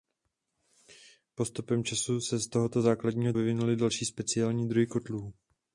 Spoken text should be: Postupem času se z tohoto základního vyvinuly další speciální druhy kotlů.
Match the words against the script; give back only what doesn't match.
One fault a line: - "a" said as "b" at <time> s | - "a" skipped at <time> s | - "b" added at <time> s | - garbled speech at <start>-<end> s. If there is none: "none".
none